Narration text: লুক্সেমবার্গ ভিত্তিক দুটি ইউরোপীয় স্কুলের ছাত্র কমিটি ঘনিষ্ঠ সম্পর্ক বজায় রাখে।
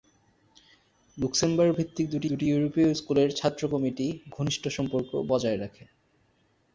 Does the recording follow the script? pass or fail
fail